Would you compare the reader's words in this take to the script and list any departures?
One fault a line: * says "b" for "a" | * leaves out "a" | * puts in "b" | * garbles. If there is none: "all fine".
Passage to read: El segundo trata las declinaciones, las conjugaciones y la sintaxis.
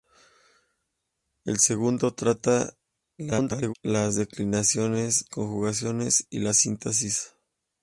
* garbles
* leaves out "las"